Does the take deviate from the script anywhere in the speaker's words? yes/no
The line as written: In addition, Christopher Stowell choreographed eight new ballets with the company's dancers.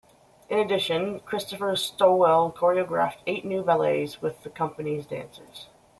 no